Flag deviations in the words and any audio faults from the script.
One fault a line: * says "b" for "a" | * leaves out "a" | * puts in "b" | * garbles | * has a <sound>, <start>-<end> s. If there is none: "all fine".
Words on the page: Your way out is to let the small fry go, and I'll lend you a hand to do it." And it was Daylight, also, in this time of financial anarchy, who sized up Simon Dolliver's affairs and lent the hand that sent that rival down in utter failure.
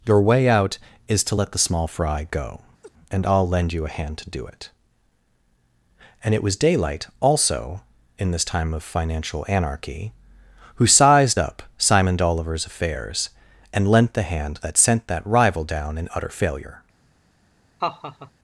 * has a laugh, 2.8-2.9 s
* has a laugh, 17.8-18.3 s